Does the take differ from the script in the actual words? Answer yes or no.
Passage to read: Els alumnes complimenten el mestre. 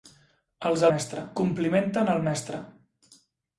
yes